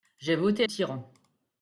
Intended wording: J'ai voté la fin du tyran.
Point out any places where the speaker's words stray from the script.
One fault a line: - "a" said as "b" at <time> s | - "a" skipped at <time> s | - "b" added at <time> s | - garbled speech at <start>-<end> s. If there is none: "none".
- "la fin du" skipped at 0.7 s